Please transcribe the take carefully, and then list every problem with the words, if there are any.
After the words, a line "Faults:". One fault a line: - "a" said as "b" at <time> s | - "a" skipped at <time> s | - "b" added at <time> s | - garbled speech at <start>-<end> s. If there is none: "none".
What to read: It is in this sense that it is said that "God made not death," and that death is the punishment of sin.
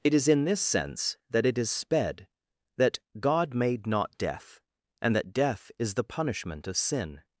It is in this sense that it is sped that "God made not death," and that death is the punishment of sin.
Faults:
- "said" said as "sped" at 1.7 s